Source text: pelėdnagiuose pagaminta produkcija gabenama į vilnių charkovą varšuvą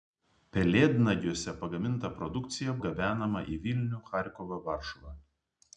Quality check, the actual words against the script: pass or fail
pass